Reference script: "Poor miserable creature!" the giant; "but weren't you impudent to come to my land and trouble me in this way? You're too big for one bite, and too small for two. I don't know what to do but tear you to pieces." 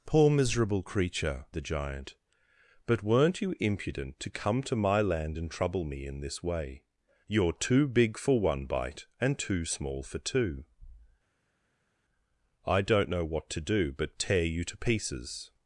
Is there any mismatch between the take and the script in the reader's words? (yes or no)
no